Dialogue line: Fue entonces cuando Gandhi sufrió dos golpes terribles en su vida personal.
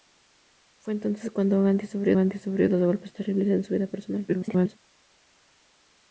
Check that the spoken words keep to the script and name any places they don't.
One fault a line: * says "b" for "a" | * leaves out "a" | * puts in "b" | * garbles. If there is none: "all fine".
* puts in "Gandhi sufrió"
* garbles